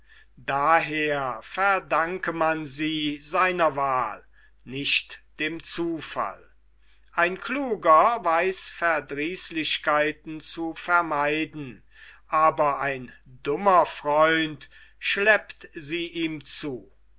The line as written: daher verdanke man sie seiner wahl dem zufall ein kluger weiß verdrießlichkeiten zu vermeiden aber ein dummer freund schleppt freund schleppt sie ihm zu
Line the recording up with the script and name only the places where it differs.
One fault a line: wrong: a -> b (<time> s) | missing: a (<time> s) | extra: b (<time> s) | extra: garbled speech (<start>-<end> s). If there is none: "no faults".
extra: nicht (4.6 s)
missing: freund schleppt (15.7 s)